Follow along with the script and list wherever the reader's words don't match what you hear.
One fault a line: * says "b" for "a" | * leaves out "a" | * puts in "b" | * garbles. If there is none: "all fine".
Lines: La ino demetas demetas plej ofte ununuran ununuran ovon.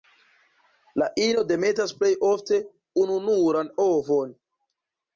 * leaves out "demetas"
* leaves out "ununuran"